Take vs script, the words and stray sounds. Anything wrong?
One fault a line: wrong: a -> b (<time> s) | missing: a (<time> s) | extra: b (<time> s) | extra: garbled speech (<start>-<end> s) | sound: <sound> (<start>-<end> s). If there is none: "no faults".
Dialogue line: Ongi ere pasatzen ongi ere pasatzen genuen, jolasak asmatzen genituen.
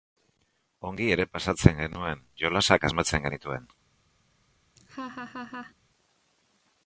missing: ongi ere pasatzen (1.8 s)
sound: laugh (4.8-5.7 s)